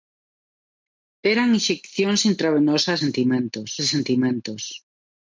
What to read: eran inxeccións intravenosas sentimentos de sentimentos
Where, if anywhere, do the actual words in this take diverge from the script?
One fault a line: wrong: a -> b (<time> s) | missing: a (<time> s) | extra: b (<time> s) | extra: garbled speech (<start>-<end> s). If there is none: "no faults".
no faults